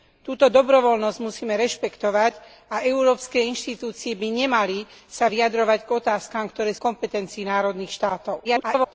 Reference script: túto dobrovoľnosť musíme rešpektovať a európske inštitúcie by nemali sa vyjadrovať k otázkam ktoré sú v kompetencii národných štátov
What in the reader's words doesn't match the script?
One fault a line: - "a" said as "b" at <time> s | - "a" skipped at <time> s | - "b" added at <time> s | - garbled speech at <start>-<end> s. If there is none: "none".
- "sú" skipped at 6.8 s
- garbled speech at 8.4-8.9 s